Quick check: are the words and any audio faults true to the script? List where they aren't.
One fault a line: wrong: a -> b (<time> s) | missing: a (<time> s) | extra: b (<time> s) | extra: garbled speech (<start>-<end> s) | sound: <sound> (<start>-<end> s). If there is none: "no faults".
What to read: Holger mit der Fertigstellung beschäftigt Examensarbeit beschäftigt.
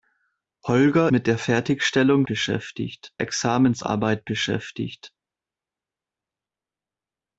no faults